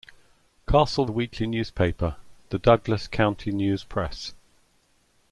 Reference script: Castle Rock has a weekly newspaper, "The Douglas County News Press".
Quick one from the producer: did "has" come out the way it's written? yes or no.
no